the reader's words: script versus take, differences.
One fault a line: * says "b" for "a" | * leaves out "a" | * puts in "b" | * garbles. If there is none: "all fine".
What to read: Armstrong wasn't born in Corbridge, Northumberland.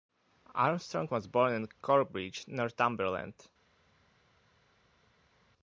* says "was" for "wasn't"